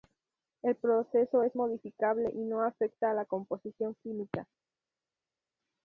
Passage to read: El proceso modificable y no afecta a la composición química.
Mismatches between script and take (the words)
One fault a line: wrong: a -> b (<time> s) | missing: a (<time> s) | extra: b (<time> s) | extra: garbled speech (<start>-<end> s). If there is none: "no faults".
extra: es (1.4 s)